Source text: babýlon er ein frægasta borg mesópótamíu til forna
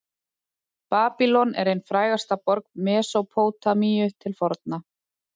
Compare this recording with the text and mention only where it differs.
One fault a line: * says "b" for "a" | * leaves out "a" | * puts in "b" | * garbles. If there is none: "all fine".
all fine